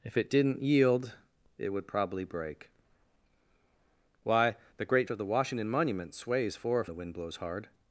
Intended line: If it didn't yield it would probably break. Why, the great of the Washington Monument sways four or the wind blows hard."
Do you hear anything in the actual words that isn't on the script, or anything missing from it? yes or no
no